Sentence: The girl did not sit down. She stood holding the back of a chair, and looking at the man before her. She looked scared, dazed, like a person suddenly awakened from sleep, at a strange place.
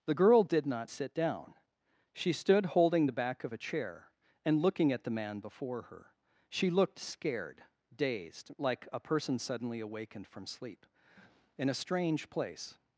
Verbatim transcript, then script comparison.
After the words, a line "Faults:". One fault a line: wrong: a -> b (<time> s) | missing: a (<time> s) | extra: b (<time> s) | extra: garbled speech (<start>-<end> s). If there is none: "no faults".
The girl did not sit down. She stood holding the back of a chair, and looking at the man before her. She looked scared, dazed, like a person suddenly awakened from sleep, in a strange place.
Faults:
wrong: at -> in (11.6 s)